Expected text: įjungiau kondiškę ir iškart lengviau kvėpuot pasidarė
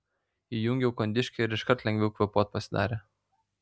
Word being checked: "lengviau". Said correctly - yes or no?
yes